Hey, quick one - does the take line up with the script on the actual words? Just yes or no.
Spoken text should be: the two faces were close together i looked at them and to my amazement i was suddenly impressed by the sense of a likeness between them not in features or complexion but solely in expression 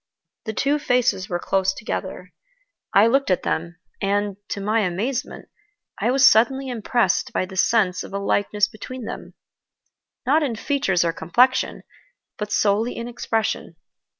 yes